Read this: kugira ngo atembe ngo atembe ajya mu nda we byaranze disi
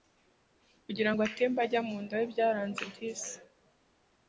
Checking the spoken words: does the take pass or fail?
fail